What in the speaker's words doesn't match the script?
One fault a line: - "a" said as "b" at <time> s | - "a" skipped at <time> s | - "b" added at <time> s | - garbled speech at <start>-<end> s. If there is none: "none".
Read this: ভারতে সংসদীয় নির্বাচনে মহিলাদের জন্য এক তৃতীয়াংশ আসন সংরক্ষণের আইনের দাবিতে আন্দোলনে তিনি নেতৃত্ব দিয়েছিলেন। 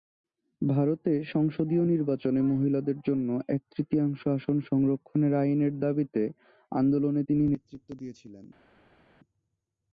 none